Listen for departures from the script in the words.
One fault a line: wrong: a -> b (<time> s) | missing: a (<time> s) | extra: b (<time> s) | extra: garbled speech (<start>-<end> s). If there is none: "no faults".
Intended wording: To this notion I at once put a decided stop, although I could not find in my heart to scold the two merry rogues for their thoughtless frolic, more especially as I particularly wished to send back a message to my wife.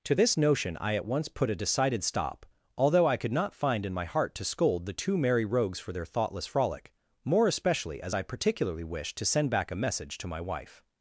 no faults